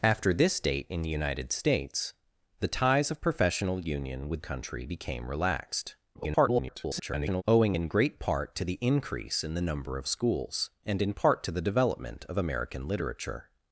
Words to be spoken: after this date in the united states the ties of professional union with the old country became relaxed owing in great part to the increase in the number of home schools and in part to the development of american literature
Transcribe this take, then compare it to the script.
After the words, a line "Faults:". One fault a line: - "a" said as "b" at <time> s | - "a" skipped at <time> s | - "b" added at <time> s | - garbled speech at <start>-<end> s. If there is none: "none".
after this date in the united states the ties of professional union with country became relaxed [garbled] owing in great part to the increase in the number of schools and in part to the development of american literature
Faults:
- "the old" skipped at 4.4 s
- garbled speech at 6.1-7.4 s
- "home" skipped at 10.1 s